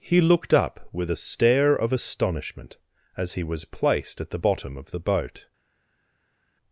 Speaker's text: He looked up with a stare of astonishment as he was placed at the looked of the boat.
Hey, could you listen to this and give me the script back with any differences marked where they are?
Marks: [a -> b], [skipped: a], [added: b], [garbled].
He looked up with a stare of astonishment as he was placed at the [looked -> bottom] of the boat.